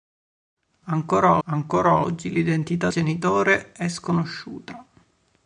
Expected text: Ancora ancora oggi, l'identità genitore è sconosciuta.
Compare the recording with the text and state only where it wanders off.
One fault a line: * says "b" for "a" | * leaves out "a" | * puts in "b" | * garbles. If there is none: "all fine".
all fine